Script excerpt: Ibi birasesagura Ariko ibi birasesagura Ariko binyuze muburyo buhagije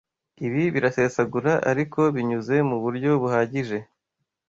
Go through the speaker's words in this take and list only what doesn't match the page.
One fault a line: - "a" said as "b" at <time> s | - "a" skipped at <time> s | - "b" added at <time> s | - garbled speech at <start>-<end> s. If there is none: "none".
- "ibi birasesagura Ariko" skipped at 2.0 s